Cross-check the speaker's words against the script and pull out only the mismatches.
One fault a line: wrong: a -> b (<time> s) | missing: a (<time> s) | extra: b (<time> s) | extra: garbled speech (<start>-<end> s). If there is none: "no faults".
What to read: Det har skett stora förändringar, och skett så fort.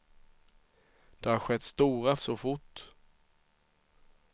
missing: förändringar och skett (2.1 s)